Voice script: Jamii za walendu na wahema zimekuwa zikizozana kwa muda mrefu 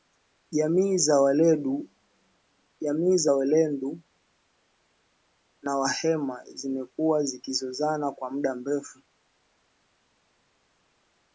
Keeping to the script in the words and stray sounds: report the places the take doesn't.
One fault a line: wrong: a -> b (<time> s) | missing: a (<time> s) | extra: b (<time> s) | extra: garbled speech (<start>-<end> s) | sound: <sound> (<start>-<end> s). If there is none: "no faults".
no faults